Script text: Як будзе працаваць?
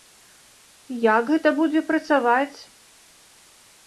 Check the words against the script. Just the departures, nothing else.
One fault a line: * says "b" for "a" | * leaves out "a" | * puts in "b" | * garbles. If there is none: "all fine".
* puts in "гэта"